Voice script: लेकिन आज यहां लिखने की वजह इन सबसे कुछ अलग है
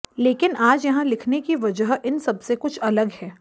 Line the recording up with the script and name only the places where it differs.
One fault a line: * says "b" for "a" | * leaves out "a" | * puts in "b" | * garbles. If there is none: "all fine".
all fine